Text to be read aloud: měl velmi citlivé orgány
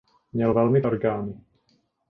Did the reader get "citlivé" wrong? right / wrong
wrong